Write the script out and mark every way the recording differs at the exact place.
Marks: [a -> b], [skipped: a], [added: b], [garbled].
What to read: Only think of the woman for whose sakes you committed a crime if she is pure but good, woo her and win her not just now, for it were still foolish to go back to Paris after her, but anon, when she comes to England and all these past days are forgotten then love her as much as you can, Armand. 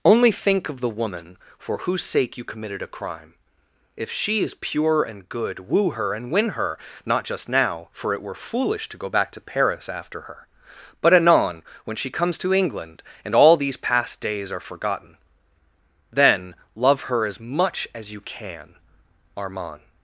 Only think of the woman for whose [sakes -> sake] you committed a crime if she is pure [but -> and] good, woo her and win her not just now, for it were [skipped: still] foolish to go back to Paris after her, but anon, when she comes to England and all these past days are forgotten then love her as much as you can, Armand.